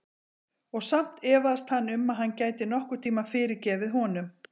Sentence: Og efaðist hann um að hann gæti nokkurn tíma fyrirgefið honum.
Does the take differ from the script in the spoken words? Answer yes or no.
yes